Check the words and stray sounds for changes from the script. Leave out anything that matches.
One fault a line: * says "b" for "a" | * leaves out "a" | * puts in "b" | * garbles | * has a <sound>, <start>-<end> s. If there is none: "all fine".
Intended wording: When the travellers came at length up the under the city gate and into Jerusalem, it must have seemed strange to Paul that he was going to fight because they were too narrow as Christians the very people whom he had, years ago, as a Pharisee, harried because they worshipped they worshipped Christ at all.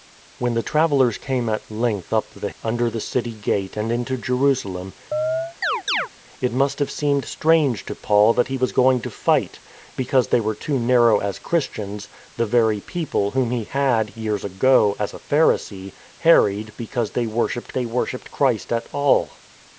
* has a chirp, 5.1-6.1 s